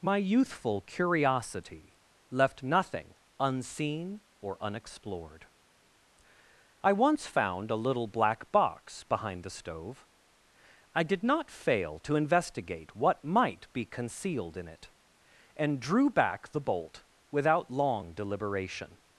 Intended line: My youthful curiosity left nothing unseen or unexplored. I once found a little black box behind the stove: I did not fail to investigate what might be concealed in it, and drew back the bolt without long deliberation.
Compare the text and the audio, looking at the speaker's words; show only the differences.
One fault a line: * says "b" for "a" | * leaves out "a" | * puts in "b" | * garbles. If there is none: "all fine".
all fine